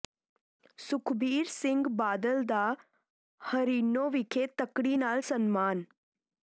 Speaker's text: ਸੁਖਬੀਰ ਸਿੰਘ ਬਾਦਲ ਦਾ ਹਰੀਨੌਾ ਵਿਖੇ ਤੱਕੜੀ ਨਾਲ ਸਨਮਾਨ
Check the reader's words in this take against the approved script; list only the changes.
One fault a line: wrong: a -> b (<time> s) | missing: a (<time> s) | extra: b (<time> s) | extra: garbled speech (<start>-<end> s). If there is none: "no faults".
no faults